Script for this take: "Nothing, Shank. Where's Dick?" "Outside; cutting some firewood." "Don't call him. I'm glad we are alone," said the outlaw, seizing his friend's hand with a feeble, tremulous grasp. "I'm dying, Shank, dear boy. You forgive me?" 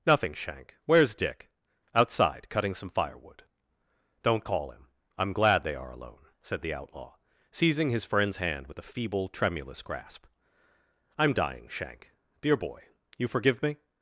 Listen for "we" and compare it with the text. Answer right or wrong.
wrong